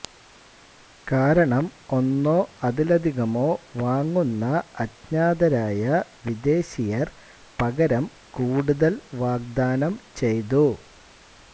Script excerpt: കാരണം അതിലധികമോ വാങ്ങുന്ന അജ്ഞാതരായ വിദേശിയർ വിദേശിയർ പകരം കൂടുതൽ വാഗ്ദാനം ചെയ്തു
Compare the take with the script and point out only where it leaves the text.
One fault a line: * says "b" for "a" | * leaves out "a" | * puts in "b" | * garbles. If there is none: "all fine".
* puts in "ഒന്നോ"
* leaves out "വിദേശിയർ"